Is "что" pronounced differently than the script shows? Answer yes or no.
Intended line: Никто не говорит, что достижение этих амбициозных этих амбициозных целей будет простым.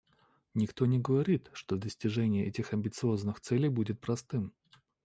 no